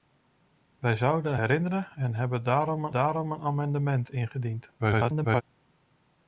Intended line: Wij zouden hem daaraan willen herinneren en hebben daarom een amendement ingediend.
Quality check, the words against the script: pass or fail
fail